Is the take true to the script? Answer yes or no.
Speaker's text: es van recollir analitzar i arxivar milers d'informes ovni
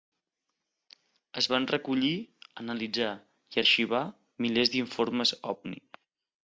yes